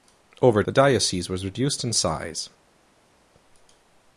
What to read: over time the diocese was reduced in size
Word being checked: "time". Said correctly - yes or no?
no